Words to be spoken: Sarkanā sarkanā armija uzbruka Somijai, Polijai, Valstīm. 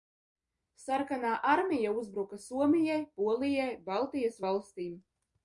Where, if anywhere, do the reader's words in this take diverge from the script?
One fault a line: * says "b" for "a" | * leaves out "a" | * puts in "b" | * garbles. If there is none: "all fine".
* leaves out "sarkanā"
* puts in "Baltijas"